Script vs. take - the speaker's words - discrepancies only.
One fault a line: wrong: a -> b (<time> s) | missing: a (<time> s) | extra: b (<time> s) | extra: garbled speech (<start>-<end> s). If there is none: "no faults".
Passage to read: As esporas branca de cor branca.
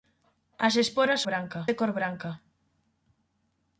no faults